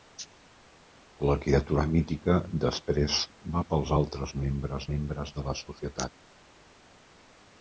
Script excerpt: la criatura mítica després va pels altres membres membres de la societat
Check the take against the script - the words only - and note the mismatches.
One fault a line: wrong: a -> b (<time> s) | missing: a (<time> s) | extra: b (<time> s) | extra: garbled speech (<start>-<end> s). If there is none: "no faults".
no faults